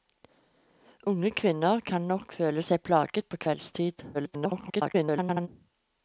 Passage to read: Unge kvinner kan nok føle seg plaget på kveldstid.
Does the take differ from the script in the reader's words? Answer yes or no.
yes